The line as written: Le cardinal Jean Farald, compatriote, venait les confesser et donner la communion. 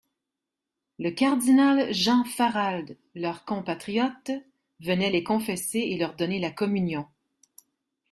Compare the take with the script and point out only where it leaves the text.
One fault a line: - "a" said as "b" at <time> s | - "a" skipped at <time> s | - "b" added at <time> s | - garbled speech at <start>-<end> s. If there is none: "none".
- "leur" added at 3.1 s
- "leur" added at 6.0 s